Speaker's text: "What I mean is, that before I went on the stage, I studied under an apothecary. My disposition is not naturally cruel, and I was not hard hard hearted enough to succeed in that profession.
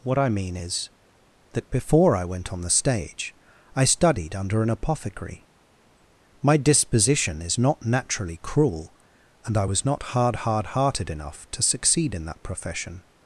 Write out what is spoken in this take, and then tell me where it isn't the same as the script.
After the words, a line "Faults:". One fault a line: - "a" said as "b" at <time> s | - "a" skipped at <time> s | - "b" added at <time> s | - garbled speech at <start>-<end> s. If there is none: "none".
"What I mean is, that before I went on the stage, I studied under an apothecary. My disposition is not naturally cruel, and I was not hard hard hearted enough to succeed in that profession.
Faults:
none